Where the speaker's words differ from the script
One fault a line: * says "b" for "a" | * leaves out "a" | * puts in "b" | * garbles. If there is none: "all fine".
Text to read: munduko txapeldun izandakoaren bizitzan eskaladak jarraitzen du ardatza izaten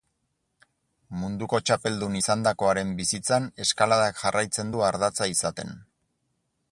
all fine